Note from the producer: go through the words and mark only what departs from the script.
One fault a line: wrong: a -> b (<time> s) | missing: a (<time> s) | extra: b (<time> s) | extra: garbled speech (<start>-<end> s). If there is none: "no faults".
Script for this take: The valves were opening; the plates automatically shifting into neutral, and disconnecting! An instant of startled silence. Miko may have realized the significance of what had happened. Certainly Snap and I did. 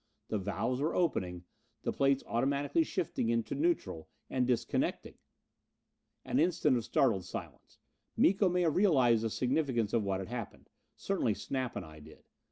no faults